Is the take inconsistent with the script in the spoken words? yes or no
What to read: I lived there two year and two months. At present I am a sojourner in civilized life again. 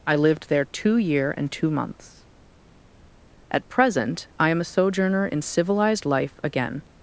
no